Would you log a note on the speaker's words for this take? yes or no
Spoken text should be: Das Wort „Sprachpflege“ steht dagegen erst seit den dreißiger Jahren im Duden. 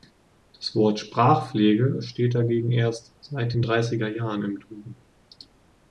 no